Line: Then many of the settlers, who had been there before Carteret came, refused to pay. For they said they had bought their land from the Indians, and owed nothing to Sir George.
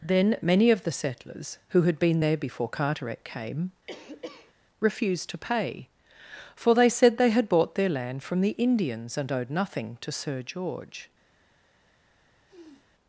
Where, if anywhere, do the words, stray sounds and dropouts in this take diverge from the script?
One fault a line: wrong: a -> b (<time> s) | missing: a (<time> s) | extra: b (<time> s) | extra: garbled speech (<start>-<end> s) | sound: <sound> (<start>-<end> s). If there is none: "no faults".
sound: cough (3.9-4.5 s)
sound: sniff (12.5-12.9 s)